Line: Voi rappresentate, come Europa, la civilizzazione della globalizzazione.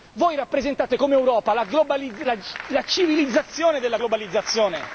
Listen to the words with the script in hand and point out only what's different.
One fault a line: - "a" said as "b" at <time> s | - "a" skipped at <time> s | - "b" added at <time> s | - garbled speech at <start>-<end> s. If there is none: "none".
none